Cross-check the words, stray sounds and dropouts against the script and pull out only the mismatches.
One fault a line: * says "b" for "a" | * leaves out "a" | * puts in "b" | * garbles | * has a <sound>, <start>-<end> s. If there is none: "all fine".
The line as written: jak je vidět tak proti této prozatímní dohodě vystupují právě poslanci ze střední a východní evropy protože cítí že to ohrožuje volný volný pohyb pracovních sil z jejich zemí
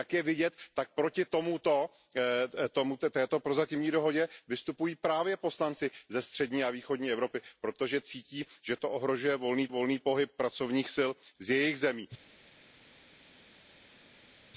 all fine